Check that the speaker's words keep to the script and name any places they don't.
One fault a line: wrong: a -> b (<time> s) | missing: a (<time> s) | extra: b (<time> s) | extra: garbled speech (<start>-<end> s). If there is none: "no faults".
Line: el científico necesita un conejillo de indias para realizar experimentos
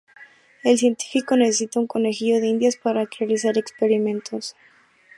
no faults